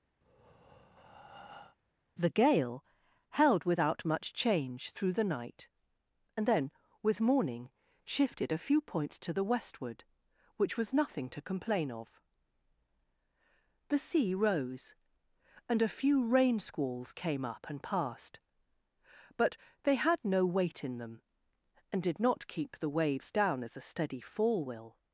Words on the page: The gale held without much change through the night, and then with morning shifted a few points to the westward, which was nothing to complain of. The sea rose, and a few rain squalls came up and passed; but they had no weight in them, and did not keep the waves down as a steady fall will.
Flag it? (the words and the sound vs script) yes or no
yes